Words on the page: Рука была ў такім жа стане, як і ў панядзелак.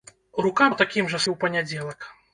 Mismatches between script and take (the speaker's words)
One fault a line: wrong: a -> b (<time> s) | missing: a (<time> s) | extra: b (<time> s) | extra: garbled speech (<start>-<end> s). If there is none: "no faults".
missing: была (0.7 s)
missing: стане як (1.2 s)